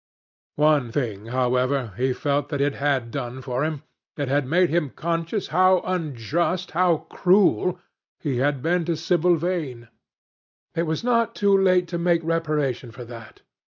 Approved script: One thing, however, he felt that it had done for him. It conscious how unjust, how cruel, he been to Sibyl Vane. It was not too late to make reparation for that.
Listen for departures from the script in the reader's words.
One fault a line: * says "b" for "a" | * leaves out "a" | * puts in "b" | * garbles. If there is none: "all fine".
* puts in "had made him"
* puts in "had"